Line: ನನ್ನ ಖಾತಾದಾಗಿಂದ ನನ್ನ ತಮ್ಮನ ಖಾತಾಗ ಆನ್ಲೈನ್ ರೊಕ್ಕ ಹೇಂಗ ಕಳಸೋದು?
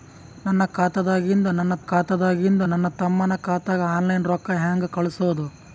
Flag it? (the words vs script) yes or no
yes